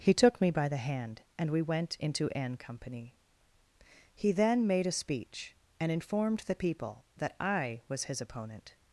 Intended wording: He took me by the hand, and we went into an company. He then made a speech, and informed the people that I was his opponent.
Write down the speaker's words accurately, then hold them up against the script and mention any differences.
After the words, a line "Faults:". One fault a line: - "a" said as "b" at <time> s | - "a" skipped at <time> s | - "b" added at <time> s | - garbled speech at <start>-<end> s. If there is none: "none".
He took me by the hand, and we went into an company. He then made a speech, and informed the people that I was his opponent.
Faults:
none